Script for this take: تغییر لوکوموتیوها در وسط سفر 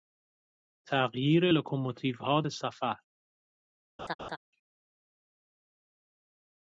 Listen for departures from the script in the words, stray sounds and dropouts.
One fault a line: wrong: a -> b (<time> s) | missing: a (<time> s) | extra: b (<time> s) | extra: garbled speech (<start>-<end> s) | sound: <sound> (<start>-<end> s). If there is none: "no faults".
missing: در وسط (2.4 s)
sound: laugh (4.0-4.4 s)